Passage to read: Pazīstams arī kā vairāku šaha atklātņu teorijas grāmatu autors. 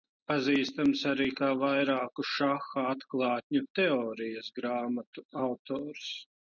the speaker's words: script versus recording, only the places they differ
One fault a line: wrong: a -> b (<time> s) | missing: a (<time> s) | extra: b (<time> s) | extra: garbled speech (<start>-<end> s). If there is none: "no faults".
no faults